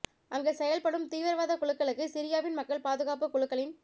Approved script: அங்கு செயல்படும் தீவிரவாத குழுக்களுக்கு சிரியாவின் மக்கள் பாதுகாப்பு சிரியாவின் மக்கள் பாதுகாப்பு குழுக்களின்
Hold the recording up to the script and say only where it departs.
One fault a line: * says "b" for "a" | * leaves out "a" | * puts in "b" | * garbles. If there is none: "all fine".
* leaves out "சிரியாவின் மக்கள் பாதுகாப்பு"